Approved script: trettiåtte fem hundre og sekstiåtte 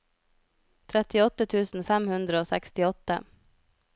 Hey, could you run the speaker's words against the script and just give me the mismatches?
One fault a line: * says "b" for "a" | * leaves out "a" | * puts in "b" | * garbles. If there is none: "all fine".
* puts in "tusen"